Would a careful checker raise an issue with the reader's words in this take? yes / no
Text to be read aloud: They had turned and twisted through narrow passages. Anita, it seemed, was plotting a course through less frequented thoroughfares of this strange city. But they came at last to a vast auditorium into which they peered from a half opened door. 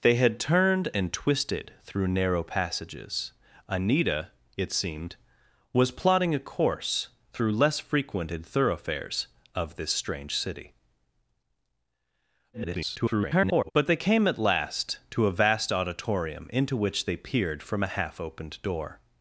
yes